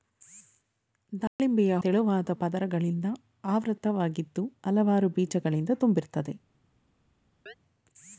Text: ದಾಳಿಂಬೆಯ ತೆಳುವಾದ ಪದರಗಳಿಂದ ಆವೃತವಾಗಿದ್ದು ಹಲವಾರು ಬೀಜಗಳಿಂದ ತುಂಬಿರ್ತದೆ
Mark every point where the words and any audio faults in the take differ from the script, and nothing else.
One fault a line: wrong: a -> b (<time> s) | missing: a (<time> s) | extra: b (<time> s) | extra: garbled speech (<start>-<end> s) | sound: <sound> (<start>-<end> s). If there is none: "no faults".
sound: dropout (1.3-1.4 s)
sound: chirp (7.5-7.5 s)